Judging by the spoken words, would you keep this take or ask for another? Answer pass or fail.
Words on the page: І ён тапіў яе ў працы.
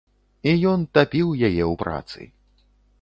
pass